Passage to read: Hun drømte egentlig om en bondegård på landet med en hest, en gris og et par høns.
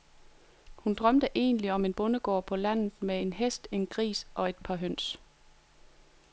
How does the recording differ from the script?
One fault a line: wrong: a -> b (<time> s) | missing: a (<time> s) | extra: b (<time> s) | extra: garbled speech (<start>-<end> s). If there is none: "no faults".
no faults